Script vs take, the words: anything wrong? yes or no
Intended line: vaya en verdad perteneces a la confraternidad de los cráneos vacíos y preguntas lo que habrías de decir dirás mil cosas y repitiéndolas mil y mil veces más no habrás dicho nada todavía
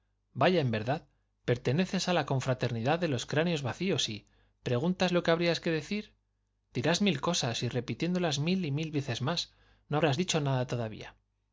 no